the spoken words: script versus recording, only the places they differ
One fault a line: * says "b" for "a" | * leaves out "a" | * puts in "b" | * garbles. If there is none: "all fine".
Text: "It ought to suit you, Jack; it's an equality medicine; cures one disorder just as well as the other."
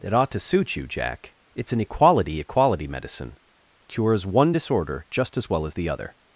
* puts in "equality"